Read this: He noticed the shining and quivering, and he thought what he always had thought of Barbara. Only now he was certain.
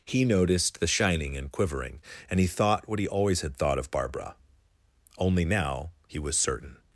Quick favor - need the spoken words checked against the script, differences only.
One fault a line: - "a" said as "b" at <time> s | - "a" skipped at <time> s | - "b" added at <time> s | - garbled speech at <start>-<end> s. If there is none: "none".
none